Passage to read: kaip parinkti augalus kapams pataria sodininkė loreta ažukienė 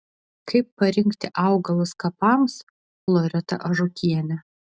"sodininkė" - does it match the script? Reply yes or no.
no